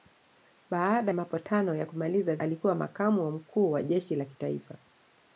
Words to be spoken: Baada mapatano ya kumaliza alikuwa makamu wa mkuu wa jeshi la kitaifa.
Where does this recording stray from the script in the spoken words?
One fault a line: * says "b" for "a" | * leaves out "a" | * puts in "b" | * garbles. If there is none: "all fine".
all fine